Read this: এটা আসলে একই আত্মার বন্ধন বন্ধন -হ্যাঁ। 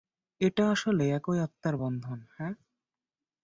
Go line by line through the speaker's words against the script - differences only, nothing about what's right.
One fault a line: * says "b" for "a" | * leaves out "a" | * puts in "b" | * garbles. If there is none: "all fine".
* leaves out "বন্ধন"